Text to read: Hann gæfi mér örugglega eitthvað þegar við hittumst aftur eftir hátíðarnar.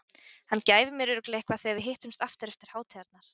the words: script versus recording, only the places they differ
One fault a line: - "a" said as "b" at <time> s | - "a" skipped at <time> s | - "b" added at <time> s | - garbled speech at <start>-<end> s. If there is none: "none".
none